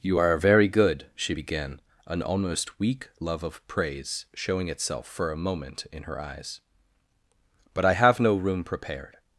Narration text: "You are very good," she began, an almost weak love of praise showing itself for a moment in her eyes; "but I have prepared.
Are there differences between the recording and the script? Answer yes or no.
yes